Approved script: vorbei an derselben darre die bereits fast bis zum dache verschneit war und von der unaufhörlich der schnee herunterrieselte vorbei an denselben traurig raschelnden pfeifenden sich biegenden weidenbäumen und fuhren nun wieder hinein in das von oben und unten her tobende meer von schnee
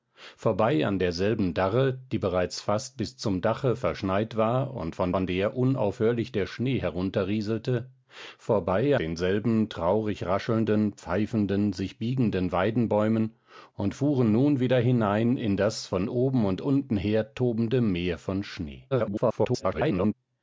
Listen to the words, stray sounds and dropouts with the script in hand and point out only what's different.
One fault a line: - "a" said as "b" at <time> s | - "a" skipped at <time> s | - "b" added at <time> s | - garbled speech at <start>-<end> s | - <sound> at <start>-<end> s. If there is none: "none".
- "von" added at 5.1 s
- "an" skipped at 8.9 s
- garbled speech at 18.9-20.1 s